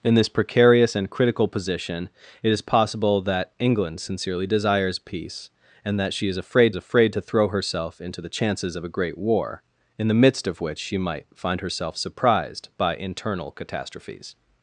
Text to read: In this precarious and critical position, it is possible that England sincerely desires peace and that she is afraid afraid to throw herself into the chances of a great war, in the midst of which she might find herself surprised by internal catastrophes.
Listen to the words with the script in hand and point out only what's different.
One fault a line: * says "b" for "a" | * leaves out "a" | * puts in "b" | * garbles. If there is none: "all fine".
all fine